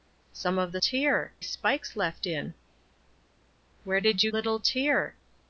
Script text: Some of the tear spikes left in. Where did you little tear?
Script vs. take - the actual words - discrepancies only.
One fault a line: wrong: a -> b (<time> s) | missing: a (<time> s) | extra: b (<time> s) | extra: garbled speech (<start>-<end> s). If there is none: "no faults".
no faults